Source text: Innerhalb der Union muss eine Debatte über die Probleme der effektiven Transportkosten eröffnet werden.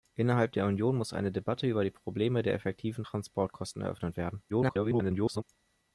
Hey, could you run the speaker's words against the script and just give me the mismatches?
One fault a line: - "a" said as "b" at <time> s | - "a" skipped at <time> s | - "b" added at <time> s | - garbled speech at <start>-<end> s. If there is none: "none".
- garbled speech at 4.5-5.4 s